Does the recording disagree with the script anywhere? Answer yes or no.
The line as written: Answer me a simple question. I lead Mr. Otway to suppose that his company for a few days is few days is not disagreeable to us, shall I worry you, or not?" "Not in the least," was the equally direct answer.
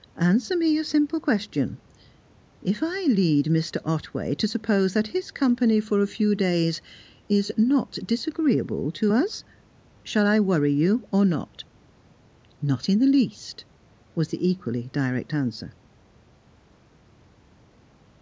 yes